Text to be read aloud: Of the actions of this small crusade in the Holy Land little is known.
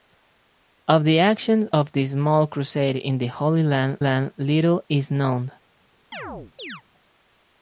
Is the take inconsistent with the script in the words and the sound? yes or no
yes